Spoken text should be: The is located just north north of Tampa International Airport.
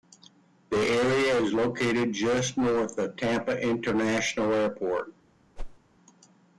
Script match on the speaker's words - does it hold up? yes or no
no